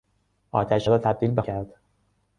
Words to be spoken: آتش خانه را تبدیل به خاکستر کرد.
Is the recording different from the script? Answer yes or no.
yes